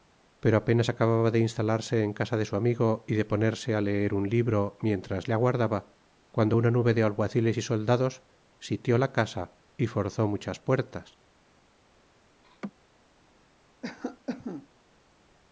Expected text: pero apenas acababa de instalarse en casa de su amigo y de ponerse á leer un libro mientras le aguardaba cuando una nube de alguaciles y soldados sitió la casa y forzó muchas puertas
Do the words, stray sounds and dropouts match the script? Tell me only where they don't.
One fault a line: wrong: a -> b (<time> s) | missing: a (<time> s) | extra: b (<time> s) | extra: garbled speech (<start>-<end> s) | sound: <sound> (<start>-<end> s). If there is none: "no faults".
sound: laugh (12.4-12.7 s)
sound: cough (13.8-14.7 s)